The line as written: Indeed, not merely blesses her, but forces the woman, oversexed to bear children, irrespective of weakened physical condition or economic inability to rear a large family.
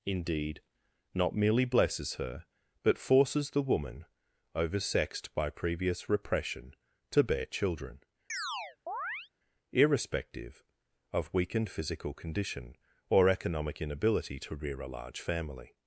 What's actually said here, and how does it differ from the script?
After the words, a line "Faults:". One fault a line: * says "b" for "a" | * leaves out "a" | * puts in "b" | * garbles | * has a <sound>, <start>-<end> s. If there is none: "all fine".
Indeed, not merely blesses her, but forces the woman, oversexed by previous repression, to bear children, irrespective of weakened physical condition or economic inability to rear a large family.
Faults:
* puts in "by previous repression"
* has a chirp, 8.3-9.3 s